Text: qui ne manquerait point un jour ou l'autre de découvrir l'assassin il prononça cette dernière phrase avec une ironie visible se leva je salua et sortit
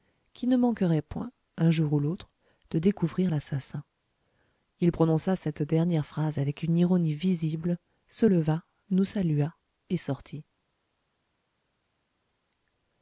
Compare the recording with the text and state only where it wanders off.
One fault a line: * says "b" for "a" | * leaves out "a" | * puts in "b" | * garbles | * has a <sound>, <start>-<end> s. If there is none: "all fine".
* says "nous" for "je"